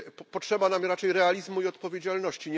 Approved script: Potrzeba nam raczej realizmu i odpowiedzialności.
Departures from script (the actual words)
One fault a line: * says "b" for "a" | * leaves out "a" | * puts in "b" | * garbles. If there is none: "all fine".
all fine